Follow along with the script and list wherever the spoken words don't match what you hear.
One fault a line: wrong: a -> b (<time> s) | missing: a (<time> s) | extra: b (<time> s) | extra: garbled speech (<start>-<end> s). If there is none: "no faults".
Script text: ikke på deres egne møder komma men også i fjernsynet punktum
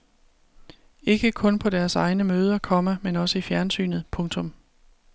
extra: kun (1.3 s)